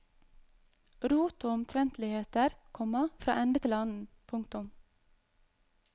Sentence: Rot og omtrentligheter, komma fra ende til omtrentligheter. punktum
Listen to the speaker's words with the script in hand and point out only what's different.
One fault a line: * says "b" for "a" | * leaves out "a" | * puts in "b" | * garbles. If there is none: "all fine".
* says "annen" for "omtrentligheter"